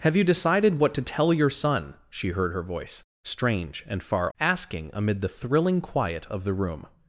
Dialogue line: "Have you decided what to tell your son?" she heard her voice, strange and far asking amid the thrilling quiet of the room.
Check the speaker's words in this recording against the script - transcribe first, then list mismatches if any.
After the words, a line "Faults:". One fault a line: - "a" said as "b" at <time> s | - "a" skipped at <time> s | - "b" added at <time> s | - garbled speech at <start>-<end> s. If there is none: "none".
"Have you decided what to tell your son?" she heard her voice, strange and far asking amid the thrilling quiet of the room.
Faults:
none